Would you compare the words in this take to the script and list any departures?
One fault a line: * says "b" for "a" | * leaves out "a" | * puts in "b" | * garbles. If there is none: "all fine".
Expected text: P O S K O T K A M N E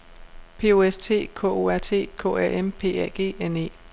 * puts in "T"
* puts in "R"
* puts in "P A G"